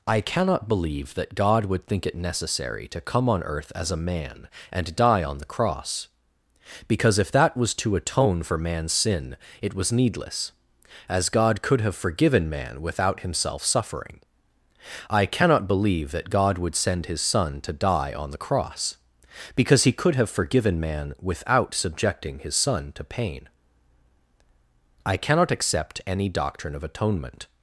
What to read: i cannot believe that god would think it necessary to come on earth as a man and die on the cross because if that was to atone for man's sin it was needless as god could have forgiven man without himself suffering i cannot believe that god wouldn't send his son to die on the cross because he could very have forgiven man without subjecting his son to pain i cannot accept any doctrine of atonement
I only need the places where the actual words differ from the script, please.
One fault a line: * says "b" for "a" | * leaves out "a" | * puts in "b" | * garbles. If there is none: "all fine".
* says "would" for "wouldn't"
* leaves out "very"